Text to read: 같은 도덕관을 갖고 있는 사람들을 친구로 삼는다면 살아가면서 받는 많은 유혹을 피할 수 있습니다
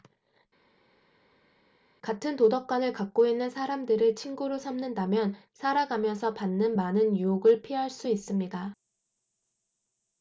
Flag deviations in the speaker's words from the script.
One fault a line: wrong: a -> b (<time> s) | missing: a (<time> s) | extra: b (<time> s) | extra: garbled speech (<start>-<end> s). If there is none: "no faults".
no faults